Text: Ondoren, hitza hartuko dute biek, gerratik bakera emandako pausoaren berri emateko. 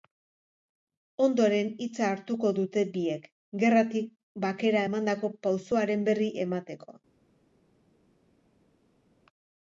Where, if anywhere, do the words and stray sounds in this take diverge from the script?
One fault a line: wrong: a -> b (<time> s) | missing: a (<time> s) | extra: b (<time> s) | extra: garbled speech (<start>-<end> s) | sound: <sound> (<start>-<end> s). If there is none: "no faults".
no faults